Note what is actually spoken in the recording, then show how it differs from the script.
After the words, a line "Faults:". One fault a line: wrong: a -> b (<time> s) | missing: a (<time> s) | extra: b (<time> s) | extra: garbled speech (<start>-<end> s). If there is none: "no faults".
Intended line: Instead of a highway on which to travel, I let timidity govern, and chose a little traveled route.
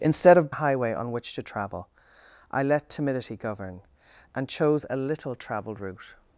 Instead of a highway on which to travel, I let timidity govern, and chose a little traveled route.
Faults:
no faults